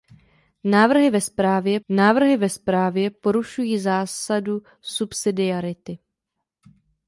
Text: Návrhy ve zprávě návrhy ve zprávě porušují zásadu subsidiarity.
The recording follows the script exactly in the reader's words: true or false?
true